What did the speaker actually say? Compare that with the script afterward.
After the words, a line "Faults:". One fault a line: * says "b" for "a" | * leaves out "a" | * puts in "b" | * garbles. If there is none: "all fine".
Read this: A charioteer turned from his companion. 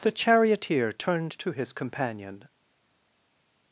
The charioteer turned to his companion.
Faults:
* says "The" for "A"
* says "to" for "from"